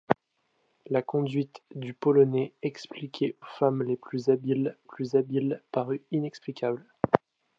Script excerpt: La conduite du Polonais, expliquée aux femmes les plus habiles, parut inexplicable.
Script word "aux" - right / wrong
wrong